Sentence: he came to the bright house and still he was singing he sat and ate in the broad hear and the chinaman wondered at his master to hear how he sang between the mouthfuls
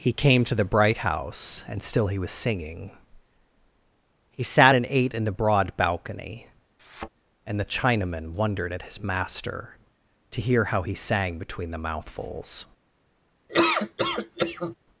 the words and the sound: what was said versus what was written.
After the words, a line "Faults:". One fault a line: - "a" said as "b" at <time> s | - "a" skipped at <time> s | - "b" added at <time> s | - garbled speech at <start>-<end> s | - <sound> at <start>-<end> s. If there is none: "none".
he came to the bright house and still he was singing he sat and ate in the broad balcony and the chinaman wondered at his master to hear how he sang between the mouthfuls
Faults:
- "hear" said as "balcony" at 5.8 s
- thud at 6.8-7.1 s
- laugh at 13.5-14.8 s